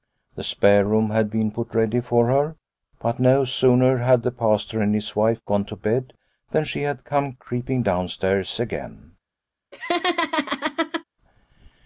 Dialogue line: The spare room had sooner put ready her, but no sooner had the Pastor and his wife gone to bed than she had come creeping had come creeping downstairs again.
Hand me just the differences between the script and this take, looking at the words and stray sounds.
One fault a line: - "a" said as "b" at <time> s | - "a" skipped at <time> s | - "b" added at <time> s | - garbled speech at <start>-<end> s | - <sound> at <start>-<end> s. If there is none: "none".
- "sooner" said as "been" at 1.3 s
- "for" added at 2.0 s
- "had come creeping" skipped at 7.8 s
- laugh at 9.7-11.0 s